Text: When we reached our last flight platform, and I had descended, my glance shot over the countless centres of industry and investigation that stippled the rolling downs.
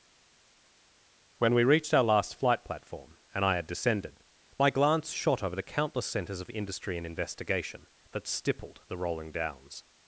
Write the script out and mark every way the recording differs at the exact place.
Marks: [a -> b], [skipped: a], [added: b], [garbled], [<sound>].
When we reached our last flight platform, and I had descended, my glance shot over the countless centres of industry and investigation that stippled the rolling downs.